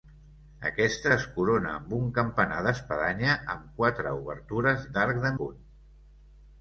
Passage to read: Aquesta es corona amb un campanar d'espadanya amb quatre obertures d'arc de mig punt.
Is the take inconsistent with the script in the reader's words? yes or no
yes